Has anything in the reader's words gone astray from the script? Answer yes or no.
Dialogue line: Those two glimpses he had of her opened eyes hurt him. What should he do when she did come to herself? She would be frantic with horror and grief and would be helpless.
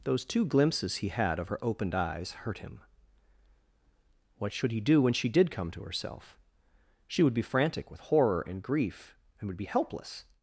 no